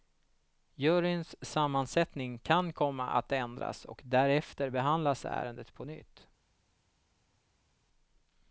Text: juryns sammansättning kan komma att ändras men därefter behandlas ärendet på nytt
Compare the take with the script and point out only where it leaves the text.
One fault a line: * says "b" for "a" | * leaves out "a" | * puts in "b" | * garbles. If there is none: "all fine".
* says "och" for "men"